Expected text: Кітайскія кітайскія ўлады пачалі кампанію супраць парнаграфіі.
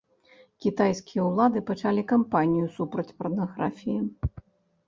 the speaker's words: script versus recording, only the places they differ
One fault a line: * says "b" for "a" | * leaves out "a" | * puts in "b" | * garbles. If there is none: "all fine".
* leaves out "кітайскія"